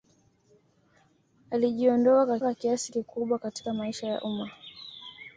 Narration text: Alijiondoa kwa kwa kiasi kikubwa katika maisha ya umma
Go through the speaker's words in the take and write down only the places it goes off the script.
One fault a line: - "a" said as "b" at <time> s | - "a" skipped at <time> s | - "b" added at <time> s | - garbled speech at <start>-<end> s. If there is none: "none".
none